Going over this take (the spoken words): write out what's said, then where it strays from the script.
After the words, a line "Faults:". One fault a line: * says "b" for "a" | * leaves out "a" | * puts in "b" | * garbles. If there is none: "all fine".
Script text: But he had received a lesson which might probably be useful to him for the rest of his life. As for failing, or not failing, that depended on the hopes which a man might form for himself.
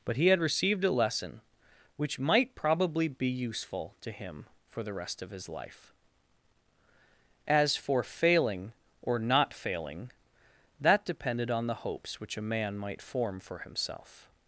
But he had received a lesson which might probably be useful to him for the rest of his life. As for failing, or not failing, that depended on the hopes which a man might form for himself.
Faults:
all fine